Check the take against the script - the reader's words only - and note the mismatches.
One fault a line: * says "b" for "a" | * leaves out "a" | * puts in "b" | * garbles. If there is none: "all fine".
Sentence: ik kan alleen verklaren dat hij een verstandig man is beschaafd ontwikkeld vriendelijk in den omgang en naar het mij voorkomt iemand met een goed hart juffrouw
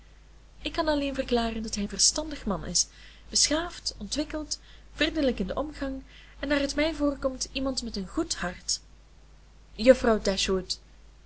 all fine